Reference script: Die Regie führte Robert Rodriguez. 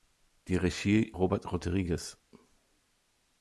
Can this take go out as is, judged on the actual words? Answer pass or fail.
fail